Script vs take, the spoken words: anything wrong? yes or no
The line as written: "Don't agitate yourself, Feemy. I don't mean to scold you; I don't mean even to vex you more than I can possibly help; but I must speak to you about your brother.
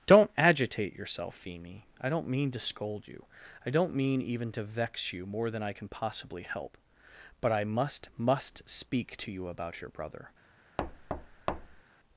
yes